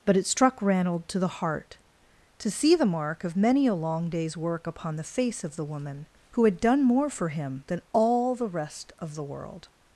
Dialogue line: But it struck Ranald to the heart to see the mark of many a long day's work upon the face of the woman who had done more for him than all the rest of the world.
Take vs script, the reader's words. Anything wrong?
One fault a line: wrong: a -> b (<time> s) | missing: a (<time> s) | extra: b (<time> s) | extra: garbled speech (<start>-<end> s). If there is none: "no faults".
no faults